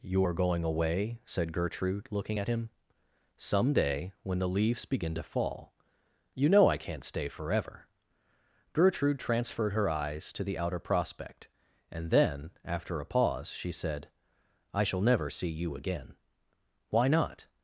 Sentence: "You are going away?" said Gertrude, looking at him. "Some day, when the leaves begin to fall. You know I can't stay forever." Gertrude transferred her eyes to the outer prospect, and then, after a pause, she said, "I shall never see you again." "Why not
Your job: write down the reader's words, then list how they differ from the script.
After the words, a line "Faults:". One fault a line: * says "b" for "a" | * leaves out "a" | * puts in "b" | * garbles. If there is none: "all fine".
"You are going away?" said Gertrude, looking at him. "Some day, when the leaves begin to fall. You know I can't stay forever." Gertrude transferred her eyes to the outer prospect, and then, after a pause, she said, "I shall never see you again." "Why not
Faults:
all fine